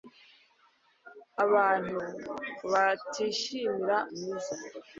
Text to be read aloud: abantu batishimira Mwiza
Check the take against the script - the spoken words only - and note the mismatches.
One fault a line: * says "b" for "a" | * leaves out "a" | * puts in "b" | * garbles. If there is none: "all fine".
all fine